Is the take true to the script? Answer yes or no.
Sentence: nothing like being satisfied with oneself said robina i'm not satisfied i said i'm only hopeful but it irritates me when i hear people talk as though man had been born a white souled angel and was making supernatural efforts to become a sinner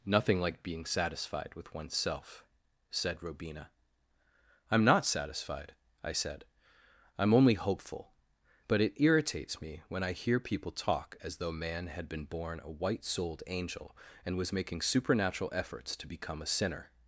yes